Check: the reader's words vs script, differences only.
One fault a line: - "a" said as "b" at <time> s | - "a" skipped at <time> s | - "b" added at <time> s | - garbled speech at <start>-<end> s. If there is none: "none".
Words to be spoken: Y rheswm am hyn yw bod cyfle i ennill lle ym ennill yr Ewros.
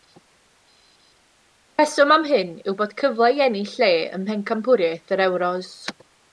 - "ennill" said as "mhencampwriaeth" at 4.3 s